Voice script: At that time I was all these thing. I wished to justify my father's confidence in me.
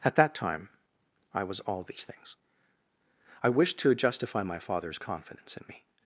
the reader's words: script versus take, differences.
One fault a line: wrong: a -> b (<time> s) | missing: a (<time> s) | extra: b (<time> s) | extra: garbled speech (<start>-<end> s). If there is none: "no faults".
wrong: thing -> things (2.0 s)